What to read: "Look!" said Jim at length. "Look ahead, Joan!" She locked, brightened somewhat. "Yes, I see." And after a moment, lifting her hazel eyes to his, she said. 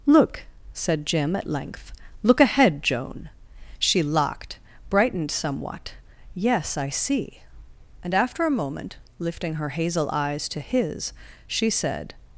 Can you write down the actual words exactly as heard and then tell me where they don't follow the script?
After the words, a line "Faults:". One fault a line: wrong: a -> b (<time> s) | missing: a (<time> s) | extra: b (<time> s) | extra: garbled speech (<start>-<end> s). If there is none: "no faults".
"Look!" said Jim at length. "Look ahead, Joan!" She locked, brightened somewhat. "Yes, I see." And after a moment, lifting her hazel eyes to his, she said.
Faults:
no faults